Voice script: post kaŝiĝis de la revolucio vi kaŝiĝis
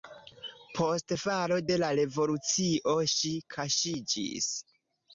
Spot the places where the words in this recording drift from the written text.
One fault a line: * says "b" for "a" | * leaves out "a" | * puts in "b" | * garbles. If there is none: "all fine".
* says "falo" for "kaŝiĝis"
* says "ŝi" for "vi"